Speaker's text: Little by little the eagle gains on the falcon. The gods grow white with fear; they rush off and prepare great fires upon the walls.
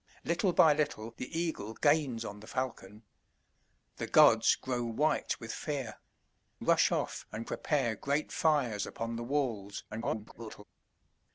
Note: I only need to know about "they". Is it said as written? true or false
false